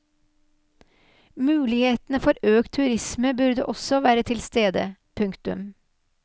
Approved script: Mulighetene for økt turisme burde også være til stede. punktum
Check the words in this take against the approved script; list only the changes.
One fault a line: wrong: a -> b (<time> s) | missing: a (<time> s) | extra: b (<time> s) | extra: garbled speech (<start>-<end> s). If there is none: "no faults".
no faults